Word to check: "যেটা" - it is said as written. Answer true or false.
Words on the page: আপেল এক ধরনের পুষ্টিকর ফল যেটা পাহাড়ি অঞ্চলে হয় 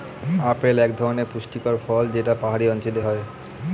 true